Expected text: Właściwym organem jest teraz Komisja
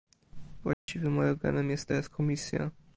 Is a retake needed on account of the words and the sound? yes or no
yes